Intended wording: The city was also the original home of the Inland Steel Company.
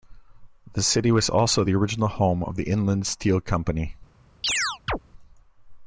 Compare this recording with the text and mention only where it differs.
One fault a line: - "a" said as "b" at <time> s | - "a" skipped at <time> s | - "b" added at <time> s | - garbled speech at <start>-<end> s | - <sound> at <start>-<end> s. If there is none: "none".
- chirp at 4.4-5.0 s